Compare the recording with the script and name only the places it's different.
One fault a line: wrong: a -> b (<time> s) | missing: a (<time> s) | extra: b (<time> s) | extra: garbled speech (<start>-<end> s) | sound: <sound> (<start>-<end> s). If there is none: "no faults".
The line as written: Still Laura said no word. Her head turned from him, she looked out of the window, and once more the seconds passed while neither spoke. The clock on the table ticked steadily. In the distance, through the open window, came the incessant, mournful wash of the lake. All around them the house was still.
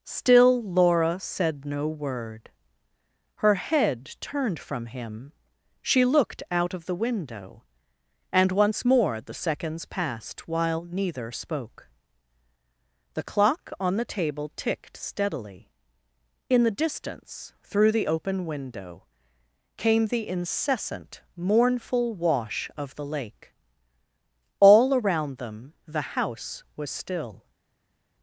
no faults